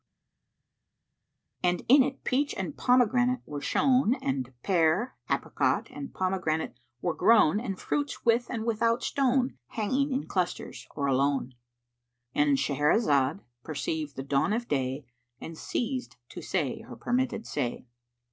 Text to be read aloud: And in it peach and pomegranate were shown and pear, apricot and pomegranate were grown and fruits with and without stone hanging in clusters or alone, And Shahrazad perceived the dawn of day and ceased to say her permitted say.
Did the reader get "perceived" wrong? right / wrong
right